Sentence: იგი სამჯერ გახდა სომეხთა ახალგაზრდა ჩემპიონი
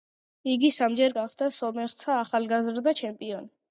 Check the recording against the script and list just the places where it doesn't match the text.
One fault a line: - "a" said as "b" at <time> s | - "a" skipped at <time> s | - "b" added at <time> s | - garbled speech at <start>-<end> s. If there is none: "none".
none